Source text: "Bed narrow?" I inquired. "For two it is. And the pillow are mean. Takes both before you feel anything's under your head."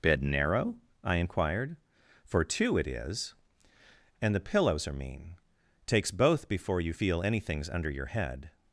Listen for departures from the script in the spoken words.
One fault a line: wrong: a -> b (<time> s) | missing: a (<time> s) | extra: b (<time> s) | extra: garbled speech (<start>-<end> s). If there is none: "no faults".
wrong: pillow -> pillows (4.4 s)